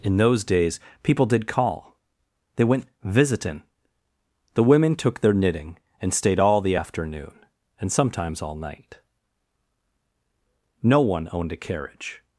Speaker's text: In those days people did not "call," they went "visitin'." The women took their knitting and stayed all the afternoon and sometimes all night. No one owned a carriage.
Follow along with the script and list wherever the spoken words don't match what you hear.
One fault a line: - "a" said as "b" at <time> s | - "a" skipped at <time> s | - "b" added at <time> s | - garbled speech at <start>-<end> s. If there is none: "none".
- "not" skipped at 1.5 s